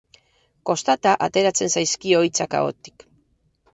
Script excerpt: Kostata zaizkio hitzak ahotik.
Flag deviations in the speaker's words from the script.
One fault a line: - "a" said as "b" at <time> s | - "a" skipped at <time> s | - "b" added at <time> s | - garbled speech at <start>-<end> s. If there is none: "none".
- "ateratzen" added at 1.3 s